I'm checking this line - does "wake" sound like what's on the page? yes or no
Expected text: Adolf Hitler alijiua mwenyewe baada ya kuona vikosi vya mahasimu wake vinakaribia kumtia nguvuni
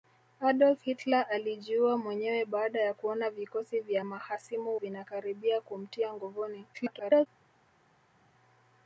no